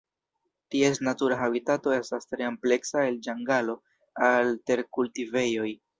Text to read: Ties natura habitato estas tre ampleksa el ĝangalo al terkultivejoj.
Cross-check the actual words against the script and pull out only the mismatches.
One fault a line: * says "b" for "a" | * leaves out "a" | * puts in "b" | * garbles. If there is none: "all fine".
all fine